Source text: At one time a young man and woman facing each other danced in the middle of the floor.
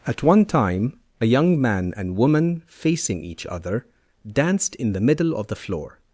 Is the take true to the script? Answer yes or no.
yes